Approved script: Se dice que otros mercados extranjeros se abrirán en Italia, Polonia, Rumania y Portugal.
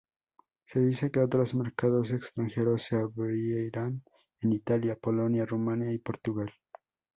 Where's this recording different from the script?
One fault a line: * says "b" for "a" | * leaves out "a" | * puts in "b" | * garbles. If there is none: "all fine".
all fine